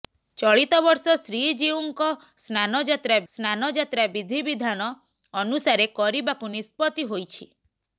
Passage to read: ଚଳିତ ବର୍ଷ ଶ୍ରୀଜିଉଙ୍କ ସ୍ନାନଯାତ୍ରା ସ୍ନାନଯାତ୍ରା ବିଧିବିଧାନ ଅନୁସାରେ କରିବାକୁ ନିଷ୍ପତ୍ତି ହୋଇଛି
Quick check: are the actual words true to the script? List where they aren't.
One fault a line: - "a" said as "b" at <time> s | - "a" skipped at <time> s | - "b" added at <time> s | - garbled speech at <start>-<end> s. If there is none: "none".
none